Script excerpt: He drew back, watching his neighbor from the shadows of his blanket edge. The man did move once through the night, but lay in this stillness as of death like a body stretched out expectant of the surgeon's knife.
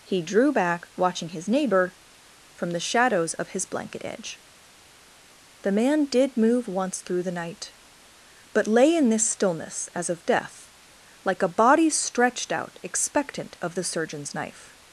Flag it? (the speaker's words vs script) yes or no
no